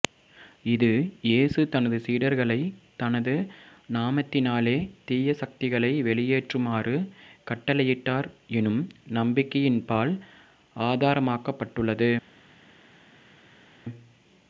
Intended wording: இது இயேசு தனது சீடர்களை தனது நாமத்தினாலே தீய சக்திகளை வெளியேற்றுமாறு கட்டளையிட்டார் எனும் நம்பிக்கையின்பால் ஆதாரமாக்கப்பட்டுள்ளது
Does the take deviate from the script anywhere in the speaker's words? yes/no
no